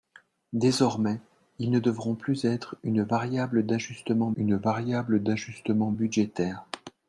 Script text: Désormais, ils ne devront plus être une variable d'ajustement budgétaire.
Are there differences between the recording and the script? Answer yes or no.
yes